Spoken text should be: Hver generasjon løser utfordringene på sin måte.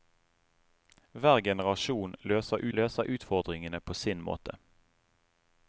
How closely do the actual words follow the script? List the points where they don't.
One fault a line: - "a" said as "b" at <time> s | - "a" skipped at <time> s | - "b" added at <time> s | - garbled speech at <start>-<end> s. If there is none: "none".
- "løser" added at 2.8 s